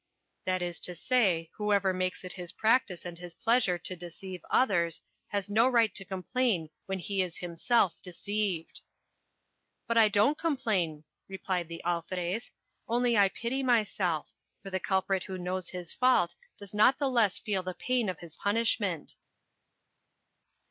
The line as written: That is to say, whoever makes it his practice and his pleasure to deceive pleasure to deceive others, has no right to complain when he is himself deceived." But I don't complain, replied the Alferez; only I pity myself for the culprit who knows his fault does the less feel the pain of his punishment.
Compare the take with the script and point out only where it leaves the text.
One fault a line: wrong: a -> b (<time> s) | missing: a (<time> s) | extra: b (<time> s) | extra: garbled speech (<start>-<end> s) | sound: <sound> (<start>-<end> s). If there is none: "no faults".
missing: pleasure to deceive (4.4 s)
extra: not (16.7 s)